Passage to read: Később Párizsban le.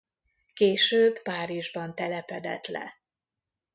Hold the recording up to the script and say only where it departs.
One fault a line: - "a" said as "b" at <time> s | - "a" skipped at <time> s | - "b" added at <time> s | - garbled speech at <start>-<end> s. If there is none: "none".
- "telepedett" added at 2.0 s